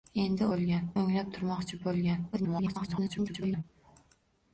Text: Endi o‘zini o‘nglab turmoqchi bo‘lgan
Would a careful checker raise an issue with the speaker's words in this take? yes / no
yes